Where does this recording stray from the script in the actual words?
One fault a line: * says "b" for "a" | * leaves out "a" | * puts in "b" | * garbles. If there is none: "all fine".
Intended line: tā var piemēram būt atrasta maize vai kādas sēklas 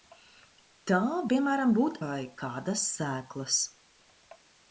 * leaves out "var"
* leaves out "atrasta maize"